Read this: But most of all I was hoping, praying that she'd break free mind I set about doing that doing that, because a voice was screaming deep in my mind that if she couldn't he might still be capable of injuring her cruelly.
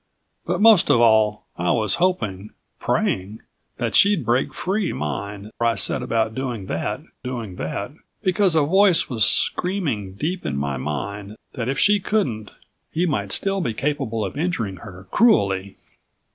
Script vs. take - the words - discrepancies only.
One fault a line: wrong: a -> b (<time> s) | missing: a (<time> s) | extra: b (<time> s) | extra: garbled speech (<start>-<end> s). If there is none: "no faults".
no faults